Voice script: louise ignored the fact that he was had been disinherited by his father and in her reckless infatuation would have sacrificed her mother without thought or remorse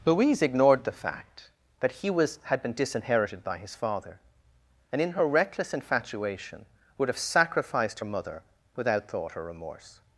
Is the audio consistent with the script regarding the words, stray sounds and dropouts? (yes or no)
yes